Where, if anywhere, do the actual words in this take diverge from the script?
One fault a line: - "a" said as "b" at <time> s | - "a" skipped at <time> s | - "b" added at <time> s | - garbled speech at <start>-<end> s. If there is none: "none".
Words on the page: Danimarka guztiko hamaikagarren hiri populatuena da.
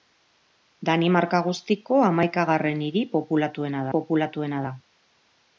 - "populatuena" added at 3.9 s